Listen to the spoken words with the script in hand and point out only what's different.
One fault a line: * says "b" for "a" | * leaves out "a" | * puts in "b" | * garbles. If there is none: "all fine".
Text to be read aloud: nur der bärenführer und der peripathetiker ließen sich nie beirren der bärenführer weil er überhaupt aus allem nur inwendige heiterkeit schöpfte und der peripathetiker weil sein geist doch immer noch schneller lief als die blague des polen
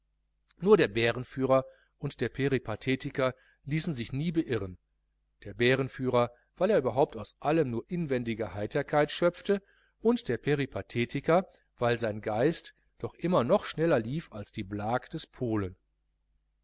all fine